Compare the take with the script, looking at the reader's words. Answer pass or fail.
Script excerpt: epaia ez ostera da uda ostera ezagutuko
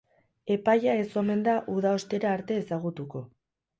fail